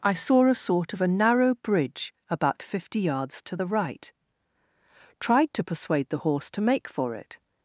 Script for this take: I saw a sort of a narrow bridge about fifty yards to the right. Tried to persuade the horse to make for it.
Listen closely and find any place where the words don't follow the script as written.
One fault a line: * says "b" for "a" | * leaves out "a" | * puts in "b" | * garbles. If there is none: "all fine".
all fine